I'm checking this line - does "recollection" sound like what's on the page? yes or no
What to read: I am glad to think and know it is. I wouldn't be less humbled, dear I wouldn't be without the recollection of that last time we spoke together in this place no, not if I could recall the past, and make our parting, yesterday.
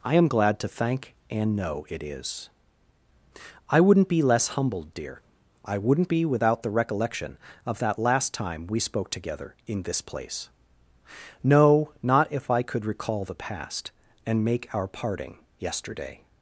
yes